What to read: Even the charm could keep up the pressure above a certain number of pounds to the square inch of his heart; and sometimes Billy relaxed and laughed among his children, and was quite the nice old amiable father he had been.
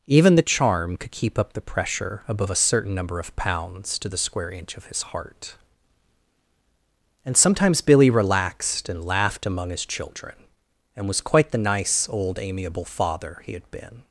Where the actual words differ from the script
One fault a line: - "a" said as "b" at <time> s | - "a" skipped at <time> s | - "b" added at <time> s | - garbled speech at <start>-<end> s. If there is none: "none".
none